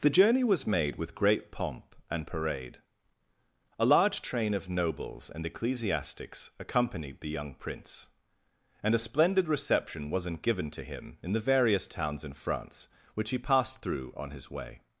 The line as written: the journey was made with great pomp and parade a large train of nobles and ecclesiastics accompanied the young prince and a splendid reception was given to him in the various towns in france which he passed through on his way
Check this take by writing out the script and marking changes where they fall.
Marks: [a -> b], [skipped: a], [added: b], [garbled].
the journey was made with great pomp and parade a large train of nobles and ecclesiastics accompanied the young prince and a splendid reception [was -> wasn't] given to him in the various towns in france which he passed through on his way